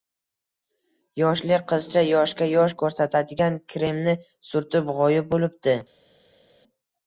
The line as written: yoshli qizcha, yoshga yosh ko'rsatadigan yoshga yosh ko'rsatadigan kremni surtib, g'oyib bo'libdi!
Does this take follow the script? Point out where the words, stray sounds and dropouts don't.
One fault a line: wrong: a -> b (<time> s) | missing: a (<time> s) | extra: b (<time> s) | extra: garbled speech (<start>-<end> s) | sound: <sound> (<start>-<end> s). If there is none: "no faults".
missing: yoshga yosh ko'rsatadigan (3.6 s)